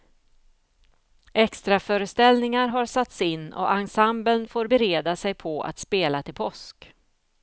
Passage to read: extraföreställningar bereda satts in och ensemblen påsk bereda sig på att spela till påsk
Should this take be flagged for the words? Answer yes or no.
yes